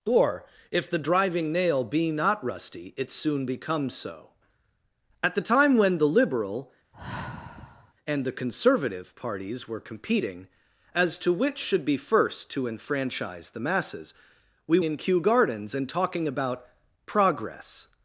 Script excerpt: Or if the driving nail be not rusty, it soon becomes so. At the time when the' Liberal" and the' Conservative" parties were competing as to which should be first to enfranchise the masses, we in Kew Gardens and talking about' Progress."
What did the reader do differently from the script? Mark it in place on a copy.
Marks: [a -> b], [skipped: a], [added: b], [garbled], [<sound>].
Or if the driving nail be not rusty, it soon becomes so. At the time when the' Liberal" [sigh] and the' Conservative" parties were competing as to which should be first to enfranchise the masses, we in Kew Gardens and talking about' Progress."